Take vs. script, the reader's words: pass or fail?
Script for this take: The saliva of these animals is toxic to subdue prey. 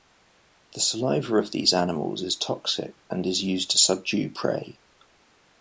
fail